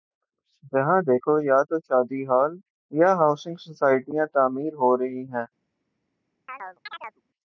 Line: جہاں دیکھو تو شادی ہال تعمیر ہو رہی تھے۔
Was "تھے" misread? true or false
true